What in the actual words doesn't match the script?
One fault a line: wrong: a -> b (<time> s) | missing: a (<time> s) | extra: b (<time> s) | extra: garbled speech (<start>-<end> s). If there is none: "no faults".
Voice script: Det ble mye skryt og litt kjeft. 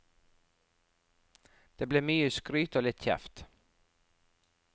no faults